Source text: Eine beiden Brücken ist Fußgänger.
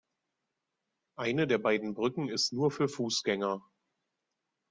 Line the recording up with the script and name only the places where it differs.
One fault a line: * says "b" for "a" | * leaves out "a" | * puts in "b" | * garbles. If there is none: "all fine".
* puts in "der"
* puts in "nur für"